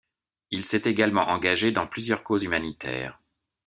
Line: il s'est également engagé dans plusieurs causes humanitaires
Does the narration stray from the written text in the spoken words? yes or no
no